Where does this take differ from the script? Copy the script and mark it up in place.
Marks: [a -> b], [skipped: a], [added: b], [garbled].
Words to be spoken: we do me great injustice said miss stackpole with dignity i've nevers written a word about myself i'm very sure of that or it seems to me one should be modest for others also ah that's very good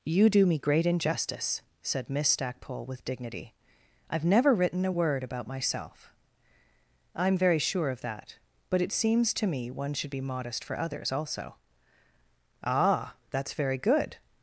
[we -> you] do me great injustice said miss stackpole with dignity i've [nevers -> never] written a word about myself i'm very sure of that [or -> but] it seems to me one should be modest for others also ah that's very good